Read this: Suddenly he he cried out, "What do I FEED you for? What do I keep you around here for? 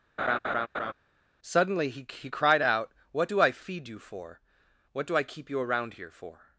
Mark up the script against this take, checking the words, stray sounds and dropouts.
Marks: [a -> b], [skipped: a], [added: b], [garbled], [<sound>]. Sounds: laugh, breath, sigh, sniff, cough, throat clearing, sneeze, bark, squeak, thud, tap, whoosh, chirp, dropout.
[laugh] Suddenly he he cried out, "What do I FEED you for? What do I keep you around here for?